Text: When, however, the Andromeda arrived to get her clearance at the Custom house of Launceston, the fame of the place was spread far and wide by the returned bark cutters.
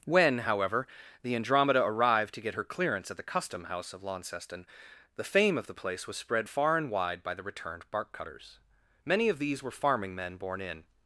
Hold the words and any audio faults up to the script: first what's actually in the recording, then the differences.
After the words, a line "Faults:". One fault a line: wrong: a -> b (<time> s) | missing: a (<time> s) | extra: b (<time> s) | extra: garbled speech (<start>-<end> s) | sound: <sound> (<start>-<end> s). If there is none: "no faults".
When, however, the Andromeda arrived to get her clearance at the Custom house of Launceston, the fame of the place was spread far and wide by the returned bark cutters. Many of these were farming men born in
Faults:
extra: Many of these were farming men born in (9.0 s)